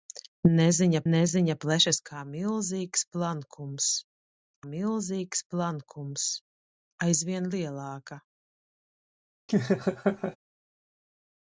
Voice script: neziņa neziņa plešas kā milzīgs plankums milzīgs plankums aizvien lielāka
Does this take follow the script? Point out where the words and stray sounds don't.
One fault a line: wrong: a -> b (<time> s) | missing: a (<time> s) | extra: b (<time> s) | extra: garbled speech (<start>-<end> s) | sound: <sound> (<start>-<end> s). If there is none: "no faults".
sound: laugh (9.5-10.4 s)